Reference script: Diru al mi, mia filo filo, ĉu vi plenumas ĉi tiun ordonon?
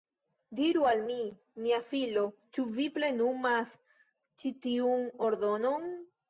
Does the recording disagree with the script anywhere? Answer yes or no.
yes